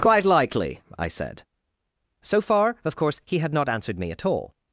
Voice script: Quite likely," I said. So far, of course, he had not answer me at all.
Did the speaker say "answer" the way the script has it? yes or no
no